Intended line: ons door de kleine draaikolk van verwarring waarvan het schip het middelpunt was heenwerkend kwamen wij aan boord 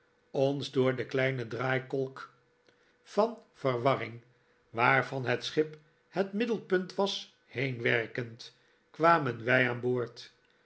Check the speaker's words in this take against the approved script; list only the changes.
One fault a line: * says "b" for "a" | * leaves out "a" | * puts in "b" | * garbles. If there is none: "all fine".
all fine